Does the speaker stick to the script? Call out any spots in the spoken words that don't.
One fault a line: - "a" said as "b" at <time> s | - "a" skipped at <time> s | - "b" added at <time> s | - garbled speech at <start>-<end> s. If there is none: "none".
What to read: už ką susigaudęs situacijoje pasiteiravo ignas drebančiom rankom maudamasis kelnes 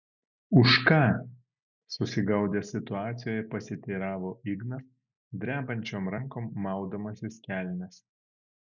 none